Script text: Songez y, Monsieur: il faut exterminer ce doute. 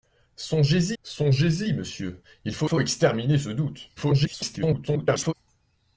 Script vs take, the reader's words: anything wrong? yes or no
yes